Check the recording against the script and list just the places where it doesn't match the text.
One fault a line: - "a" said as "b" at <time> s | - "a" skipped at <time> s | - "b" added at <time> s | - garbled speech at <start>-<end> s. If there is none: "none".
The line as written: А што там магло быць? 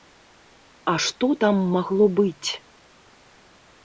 none